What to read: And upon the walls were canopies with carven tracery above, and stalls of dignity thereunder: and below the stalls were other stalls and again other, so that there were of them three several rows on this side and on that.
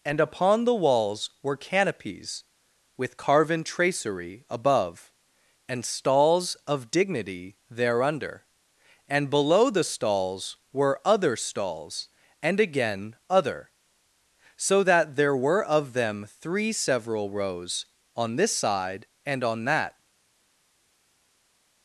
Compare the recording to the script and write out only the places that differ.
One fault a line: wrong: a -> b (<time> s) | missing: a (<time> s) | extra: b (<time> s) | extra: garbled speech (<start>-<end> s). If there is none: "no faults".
no faults